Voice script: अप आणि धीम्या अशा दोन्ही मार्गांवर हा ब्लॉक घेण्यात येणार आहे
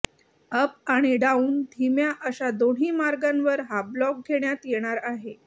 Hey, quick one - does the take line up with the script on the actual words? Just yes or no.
no